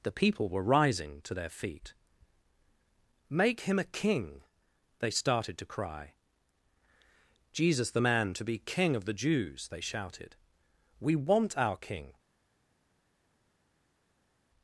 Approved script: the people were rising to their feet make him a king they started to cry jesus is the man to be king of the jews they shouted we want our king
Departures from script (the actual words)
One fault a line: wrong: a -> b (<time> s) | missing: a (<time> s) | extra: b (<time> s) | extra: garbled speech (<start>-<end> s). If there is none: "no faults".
missing: is (7.9 s)